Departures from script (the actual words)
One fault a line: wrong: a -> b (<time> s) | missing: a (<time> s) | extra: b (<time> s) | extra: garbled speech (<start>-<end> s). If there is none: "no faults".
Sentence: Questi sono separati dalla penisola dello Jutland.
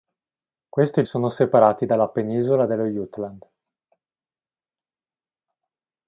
no faults